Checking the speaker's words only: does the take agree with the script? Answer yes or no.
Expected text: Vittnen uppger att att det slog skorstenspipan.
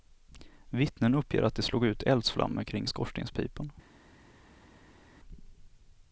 no